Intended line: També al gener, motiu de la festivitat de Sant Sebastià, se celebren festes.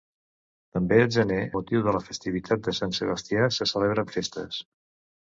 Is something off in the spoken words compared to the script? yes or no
no